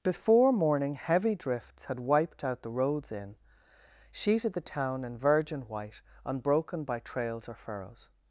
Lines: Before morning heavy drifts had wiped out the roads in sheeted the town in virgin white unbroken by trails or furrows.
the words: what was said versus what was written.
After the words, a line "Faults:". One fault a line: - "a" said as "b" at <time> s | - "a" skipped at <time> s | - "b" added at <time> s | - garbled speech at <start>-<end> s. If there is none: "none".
Before morning heavy drifts had wiped out the roads in sheeted the town in virgin white unbroken by trails or furrows.
Faults:
none